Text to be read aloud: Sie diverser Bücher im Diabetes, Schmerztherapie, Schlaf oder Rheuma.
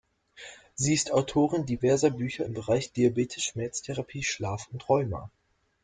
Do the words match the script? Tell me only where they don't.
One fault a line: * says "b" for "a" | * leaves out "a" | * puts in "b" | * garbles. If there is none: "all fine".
* puts in "ist Autorin"
* puts in "Bereich"
* says "und" for "oder"